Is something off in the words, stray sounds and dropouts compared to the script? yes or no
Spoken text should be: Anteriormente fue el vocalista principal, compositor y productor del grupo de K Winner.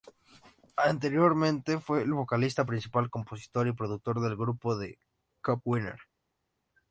no